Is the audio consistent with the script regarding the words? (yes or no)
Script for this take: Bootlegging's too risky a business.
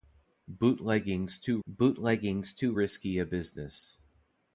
no